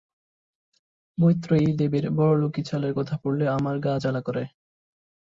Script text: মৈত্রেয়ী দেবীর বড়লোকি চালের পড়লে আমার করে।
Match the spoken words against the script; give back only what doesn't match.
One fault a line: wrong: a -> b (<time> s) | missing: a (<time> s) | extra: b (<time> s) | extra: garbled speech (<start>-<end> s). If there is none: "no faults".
extra: কথা (2.9 s)
extra: গা জ্বালা (3.8 s)